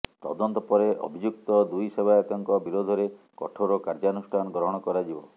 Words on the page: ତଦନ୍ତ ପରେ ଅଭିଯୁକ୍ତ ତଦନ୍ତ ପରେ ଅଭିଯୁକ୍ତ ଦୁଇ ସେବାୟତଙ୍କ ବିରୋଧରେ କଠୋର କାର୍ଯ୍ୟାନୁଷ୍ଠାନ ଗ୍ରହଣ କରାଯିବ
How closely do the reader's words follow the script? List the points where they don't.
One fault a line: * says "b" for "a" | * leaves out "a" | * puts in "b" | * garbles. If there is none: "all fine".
* leaves out "ତଦନ୍ତ ପରେ ଅଭିଯୁକ୍ତ"